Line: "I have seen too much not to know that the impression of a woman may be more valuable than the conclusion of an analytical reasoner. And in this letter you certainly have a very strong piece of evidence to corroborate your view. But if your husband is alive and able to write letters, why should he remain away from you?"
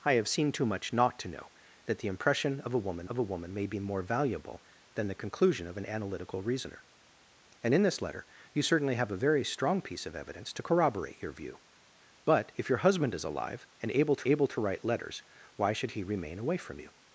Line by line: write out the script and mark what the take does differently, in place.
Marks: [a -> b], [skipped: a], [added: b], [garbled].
"I have seen too much not to know that the impression of a woman [added: of a woman] may be more valuable than the conclusion of an analytical reasoner. And in this letter you certainly have a very strong piece of evidence to corroborate your view. But if your husband is alive and able to [added: able to] write letters, why should he remain away from you?"